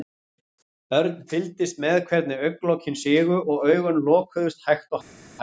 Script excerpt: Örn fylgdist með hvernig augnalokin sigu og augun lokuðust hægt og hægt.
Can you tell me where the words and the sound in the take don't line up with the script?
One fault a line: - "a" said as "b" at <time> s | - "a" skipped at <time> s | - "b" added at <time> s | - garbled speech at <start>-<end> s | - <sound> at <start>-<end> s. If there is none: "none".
none